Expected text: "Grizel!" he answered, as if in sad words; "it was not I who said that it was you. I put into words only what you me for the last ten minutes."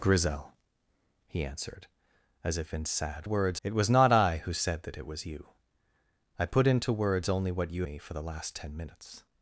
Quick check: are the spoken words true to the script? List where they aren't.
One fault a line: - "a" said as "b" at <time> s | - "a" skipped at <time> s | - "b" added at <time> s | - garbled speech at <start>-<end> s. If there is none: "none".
none